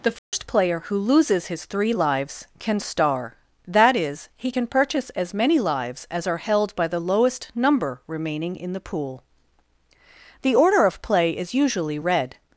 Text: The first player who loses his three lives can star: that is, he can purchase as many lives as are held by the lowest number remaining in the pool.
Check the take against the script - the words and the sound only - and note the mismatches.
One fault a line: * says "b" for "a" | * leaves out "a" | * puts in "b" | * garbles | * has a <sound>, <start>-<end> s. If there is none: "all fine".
* has a dropout, 0.2-0.3 s
* puts in "The order of play is usually red"